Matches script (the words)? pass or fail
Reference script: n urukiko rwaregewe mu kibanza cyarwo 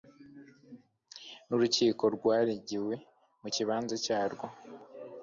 pass